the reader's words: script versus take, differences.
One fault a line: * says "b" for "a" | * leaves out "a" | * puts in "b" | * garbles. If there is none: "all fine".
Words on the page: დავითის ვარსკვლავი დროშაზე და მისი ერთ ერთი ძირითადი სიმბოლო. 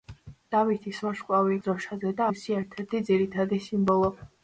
all fine